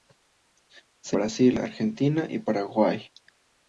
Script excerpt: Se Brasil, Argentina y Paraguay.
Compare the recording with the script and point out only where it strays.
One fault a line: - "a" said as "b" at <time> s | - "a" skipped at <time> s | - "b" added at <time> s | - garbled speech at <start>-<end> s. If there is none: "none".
none